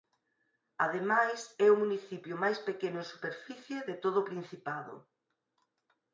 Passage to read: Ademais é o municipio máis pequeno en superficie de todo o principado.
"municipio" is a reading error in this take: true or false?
false